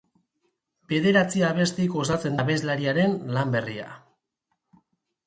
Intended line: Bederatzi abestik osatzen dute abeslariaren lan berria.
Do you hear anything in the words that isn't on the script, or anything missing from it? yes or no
yes